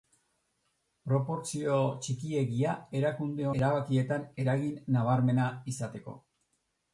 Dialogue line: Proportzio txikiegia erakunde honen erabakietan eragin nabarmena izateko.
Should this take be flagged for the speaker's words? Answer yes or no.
yes